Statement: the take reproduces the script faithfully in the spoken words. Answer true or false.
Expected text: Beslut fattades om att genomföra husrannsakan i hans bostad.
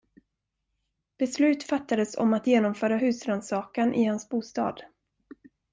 true